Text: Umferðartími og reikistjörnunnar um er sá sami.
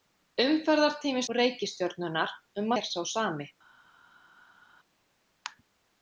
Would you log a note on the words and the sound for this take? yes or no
no